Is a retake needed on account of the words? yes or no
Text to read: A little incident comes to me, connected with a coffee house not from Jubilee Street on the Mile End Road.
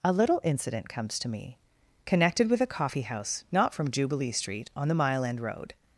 no